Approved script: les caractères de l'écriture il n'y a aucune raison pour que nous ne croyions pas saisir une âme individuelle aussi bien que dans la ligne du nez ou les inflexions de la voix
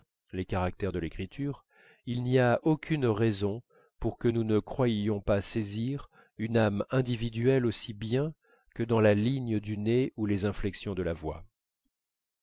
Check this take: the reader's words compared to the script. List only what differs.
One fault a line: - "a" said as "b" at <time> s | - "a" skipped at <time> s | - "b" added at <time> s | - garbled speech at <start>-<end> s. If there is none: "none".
none